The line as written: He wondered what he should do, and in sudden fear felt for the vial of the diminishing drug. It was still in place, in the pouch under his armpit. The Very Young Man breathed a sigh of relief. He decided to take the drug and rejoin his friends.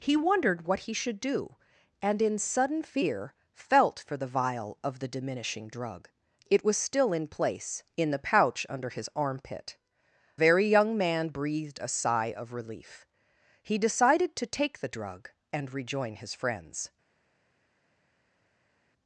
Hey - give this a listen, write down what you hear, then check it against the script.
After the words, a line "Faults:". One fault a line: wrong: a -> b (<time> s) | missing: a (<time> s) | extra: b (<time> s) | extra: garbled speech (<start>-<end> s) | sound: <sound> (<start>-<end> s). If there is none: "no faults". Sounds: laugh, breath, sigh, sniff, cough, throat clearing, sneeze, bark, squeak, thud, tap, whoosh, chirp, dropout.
He wondered what he should do, and in sudden fear felt for the vial of the diminishing drug. It was still in place, in the pouch under his armpit. Very Young Man breathed a sigh of relief. He decided to take the drug and rejoin his friends.
Faults:
missing: The (9.8 s)